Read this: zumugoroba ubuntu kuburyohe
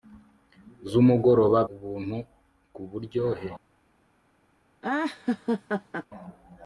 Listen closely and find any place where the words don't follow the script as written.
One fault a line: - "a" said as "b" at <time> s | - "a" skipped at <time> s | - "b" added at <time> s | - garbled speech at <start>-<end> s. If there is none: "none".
none